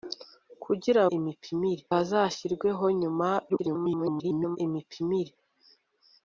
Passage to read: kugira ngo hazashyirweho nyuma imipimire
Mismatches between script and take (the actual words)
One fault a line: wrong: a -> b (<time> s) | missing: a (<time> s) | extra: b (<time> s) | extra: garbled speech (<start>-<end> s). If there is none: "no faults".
wrong: ngo -> imipimire (1.2 s)
extra: garbled speech (3.5-4.6 s)